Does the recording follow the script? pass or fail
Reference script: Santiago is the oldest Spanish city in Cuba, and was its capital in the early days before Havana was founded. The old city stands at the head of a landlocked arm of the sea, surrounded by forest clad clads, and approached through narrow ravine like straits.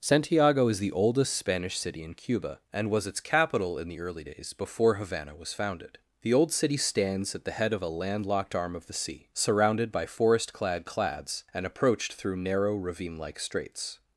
pass